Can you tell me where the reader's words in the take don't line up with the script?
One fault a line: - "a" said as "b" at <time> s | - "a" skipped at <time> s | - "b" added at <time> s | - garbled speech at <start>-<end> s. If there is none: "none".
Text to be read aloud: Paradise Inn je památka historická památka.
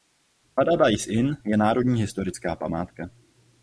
- "památka" said as "národní" at 1.6 s